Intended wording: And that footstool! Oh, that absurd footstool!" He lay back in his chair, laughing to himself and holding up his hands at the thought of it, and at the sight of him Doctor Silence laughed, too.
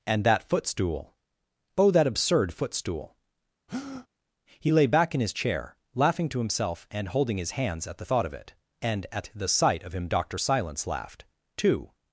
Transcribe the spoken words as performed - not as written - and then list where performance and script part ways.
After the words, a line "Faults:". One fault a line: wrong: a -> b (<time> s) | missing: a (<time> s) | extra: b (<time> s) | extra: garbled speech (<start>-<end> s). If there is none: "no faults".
And that footstool! Oh, that absurd footstool!" He lay back in his chair, laughing to himself and holding his hands at the thought of it, and at the sight of him Doctor Silence laughed, too.
Faults:
missing: up (7.4 s)